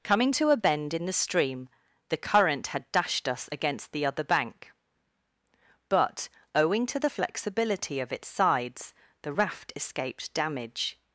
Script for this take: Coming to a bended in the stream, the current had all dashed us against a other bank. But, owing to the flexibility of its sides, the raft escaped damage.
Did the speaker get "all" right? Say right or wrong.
wrong